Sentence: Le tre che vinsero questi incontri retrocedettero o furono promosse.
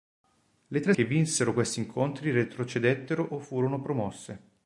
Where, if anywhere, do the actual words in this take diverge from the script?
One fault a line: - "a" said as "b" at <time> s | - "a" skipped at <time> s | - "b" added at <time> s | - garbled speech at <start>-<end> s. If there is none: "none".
none